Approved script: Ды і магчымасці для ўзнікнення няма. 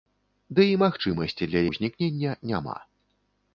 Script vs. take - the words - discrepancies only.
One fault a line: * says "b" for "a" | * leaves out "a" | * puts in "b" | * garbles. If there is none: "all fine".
all fine